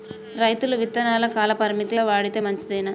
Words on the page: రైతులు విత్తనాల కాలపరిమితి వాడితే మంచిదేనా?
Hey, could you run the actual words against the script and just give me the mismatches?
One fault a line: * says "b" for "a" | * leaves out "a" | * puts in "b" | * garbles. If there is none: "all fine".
all fine